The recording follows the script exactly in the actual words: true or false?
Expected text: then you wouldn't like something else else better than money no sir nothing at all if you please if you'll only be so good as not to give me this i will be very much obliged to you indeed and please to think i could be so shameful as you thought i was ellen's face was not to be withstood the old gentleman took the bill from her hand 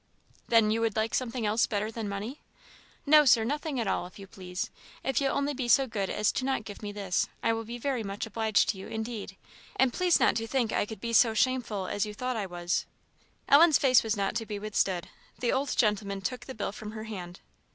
false